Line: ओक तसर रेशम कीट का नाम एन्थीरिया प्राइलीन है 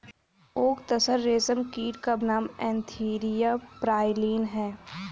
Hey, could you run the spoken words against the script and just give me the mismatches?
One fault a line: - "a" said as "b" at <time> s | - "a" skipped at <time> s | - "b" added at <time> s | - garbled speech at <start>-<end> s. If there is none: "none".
none